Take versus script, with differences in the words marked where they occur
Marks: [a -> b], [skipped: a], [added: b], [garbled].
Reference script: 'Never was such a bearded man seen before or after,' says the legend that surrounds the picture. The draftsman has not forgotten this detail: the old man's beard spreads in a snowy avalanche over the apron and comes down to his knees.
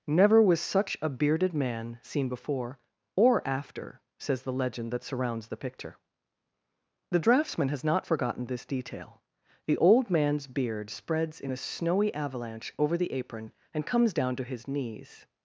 'Never was such a bearded man seen before or after,' says the legend that surrounds the picture. The draftsman has not forgotten this detail: the old man's beard spreads in a snowy avalanche over the apron and comes down to his knees.